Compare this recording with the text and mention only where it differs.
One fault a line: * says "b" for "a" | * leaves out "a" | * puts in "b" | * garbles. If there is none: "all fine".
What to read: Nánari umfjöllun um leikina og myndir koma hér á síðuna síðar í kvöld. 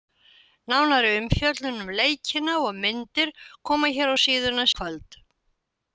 * leaves out "síðar"